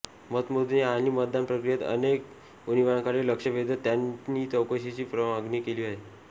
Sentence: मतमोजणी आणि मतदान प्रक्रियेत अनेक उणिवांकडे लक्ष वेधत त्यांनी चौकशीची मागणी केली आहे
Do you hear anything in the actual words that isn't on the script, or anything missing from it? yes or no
no